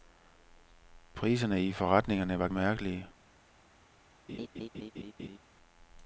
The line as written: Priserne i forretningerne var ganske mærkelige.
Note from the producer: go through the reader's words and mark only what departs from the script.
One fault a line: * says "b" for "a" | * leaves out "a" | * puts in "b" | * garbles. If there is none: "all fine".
* leaves out "ganske"